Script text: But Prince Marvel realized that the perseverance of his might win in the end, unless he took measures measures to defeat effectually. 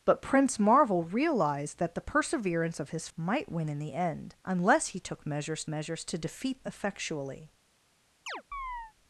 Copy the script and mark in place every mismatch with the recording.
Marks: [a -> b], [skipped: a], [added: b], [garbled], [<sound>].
But Prince Marvel realized that the perseverance of his might win in the end, unless he took measures measures to defeat effectually. [chirp]